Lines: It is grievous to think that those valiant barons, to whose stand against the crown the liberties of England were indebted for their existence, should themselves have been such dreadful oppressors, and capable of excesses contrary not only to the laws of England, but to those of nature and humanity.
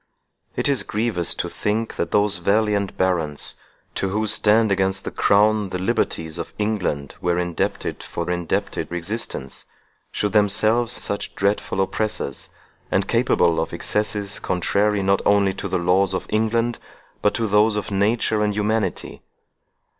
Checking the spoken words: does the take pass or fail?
fail